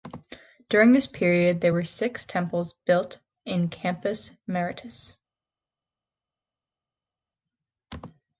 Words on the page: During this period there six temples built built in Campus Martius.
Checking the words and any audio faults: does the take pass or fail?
fail